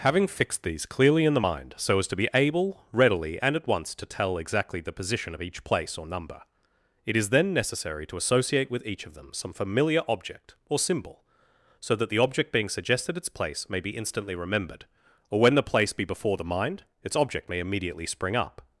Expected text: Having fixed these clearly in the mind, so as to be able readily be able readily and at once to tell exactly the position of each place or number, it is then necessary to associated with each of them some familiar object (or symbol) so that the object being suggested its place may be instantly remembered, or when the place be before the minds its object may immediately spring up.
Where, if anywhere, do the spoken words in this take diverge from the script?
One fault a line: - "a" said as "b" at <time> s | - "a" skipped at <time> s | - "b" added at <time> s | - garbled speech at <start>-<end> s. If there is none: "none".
- "be able readily" skipped at 3.4 s
- "associated" said as "associate" at 8.1 s
- "minds" said as "mind" at 16.4 s